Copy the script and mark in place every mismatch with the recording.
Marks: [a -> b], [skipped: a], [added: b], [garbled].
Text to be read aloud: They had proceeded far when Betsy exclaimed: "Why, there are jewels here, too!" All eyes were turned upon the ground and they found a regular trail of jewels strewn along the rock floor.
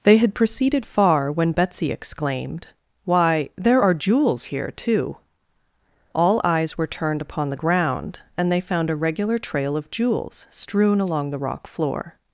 They had proceeded far when Betsy exclaimed: "Why, there are jewels here, too!" All eyes were turned upon the ground and they found a regular trail of jewels strewn along the rock floor.